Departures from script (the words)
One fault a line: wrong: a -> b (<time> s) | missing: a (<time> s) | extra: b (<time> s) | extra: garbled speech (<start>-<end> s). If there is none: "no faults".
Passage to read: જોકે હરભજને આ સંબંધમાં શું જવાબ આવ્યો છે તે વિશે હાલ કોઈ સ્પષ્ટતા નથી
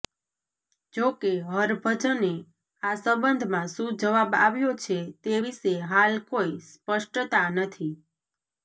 no faults